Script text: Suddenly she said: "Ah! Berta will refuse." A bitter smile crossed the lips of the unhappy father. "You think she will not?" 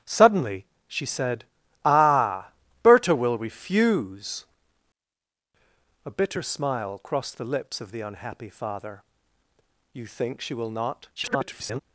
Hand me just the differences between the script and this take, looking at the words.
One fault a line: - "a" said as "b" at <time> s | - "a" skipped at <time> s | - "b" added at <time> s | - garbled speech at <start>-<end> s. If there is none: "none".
- garbled speech at 11.2-11.8 s